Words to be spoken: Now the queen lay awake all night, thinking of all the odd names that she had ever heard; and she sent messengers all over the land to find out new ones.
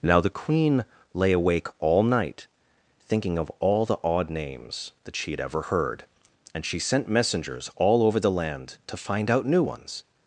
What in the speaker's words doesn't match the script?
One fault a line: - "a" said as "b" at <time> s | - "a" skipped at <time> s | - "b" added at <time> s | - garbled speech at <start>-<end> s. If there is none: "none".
none